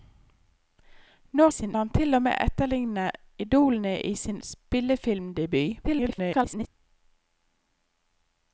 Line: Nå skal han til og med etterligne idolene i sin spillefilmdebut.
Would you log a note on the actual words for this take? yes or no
yes